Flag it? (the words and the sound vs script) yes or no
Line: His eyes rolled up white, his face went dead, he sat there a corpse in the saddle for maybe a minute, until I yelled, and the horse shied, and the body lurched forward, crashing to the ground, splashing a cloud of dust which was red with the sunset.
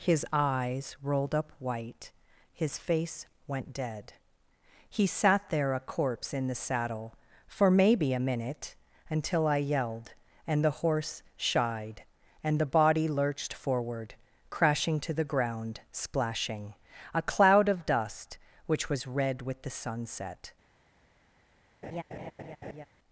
yes